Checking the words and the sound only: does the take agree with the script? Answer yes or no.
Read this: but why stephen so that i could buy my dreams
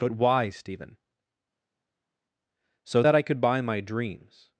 yes